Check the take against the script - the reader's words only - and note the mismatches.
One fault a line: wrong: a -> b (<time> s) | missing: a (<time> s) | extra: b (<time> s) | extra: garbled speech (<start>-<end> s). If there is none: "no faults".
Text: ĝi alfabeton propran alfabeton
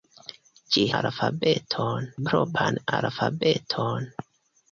no faults